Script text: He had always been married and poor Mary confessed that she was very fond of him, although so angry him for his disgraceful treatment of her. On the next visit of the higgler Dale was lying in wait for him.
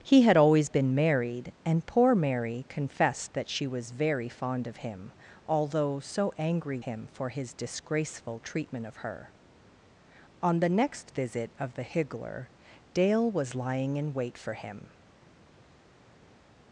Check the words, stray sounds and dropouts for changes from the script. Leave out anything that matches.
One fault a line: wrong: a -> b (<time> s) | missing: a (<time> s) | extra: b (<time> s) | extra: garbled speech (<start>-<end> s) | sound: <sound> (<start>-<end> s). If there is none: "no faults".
no faults